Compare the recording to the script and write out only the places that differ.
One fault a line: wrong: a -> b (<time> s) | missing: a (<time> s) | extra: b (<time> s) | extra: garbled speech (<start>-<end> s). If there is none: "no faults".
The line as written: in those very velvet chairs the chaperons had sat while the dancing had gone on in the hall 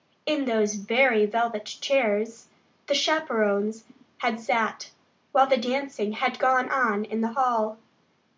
no faults